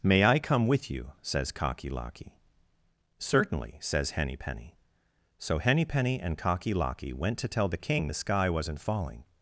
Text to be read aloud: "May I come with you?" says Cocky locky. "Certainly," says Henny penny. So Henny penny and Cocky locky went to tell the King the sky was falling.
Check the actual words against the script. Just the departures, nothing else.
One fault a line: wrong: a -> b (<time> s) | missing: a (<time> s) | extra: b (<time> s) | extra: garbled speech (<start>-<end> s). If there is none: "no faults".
wrong: was -> wasn't (8.5 s)